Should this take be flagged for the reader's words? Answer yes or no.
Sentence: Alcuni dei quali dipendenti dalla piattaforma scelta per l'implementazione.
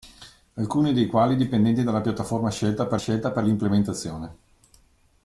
yes